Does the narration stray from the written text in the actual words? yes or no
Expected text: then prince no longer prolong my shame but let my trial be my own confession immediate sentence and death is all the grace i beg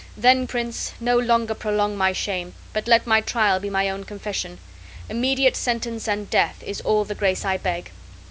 no